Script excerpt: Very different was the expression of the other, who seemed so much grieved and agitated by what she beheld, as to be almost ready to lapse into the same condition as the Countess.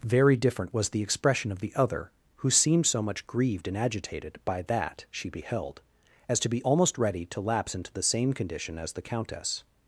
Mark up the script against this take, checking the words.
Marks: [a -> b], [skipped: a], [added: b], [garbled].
Very different was the expression of the other, who seemed so much grieved and agitated by [what -> that] she beheld, as to be almost ready to lapse into the same condition as the Countess.